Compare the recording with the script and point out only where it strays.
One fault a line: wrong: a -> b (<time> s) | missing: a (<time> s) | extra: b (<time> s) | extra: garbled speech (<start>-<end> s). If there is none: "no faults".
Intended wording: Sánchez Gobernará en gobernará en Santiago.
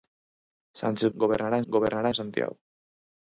no faults